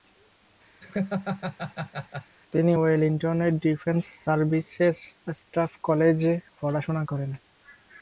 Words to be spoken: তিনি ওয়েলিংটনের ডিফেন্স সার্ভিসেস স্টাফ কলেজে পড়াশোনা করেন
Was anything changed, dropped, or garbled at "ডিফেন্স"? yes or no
no